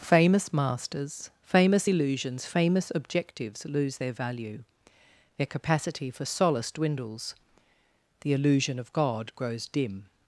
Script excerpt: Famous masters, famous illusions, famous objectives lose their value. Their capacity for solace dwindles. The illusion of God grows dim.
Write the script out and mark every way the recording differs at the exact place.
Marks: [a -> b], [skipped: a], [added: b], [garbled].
Famous masters, famous illusions, famous objectives lose their value. Their capacity for solace dwindles. The illusion of God grows dim.